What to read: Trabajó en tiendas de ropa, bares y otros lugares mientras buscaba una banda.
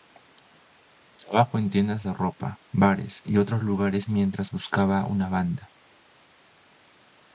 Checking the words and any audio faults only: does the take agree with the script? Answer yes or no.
yes